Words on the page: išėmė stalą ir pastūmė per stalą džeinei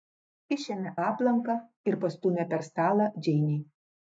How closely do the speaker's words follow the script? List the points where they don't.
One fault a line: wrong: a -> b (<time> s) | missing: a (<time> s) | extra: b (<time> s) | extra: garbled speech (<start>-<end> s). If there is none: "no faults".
wrong: stalą -> aplanką (1.0 s)